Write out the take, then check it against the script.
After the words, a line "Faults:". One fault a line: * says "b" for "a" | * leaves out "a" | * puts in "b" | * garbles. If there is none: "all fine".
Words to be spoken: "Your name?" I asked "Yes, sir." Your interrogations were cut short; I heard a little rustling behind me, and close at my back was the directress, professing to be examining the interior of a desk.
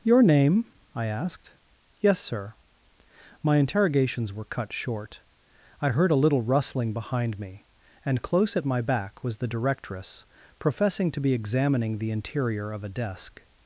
"Your name?" I asked "Yes, sir." My interrogations were cut short; I heard a little rustling behind me, and close at my back was the directress, professing to be examining the interior of a desk.
Faults:
* says "My" for "Your"